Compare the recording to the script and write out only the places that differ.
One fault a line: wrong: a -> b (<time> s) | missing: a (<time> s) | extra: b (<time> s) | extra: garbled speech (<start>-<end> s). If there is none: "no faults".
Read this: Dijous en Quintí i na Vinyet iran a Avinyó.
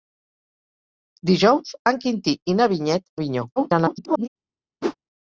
missing: iran (3.1 s)
extra: garbled speech (3.6-4.3 s)